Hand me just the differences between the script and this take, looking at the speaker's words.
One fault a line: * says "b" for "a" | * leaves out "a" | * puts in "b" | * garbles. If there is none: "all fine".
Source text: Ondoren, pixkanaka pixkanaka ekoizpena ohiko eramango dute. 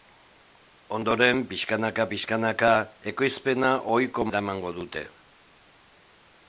all fine